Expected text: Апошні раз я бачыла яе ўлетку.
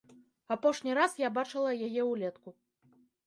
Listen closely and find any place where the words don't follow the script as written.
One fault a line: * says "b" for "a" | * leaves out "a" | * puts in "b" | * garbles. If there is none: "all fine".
all fine